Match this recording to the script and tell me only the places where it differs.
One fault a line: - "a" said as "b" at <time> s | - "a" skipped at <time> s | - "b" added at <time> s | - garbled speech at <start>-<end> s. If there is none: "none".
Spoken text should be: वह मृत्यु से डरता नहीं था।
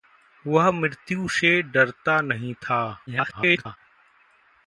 - garbled speech at 3.1-3.8 s